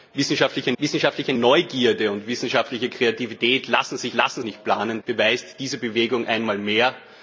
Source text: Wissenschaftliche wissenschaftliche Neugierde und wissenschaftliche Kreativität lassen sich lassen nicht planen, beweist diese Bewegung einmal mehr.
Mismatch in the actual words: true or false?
false